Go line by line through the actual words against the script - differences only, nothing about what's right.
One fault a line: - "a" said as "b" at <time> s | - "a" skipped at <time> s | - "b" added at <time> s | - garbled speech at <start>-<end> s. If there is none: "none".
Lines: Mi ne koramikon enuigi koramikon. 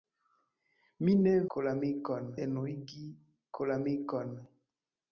none